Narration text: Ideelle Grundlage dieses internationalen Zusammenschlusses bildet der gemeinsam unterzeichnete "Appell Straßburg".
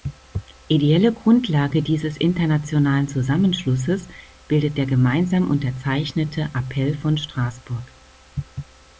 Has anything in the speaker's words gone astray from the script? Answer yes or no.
yes